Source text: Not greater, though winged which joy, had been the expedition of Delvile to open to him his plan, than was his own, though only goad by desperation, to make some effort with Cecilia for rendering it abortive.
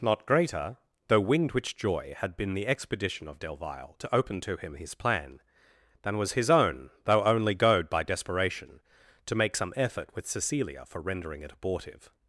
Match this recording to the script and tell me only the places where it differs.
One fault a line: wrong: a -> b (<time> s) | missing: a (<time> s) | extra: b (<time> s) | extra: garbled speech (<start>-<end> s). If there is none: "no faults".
no faults